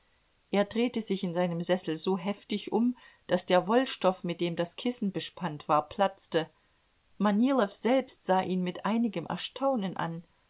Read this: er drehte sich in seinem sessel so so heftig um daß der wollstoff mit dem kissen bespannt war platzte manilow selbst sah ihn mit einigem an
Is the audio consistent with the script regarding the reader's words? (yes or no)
no